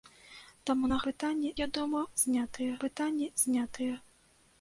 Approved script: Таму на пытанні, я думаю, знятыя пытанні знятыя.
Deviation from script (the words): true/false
false